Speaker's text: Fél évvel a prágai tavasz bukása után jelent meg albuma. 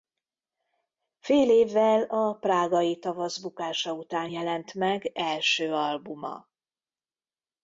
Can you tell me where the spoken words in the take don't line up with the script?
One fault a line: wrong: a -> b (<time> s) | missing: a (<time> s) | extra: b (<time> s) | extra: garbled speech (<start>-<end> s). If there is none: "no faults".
extra: első (5.1 s)